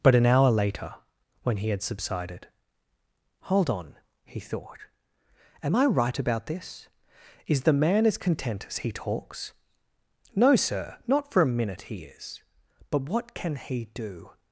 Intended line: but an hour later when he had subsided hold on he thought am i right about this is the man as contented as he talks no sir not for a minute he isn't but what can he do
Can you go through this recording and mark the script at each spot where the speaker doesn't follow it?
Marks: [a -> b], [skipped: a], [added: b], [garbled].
but an hour later when he had subsided hold on he thought am i right about this is the man as [contented -> content] as he talks no sir not for a minute he [isn't -> is] but what can he do